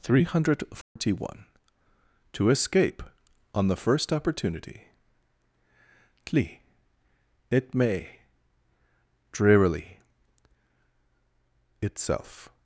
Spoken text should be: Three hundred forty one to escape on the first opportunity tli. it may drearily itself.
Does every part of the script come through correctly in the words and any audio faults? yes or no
no